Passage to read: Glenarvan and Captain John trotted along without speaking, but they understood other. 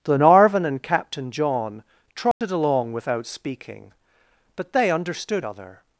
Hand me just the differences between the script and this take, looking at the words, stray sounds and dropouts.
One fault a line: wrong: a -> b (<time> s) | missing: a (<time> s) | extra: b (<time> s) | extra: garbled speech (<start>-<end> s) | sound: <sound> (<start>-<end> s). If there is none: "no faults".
sound: dropout (2.3-2.4 s)